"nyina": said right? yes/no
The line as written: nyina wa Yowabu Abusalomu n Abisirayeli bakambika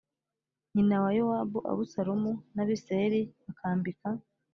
yes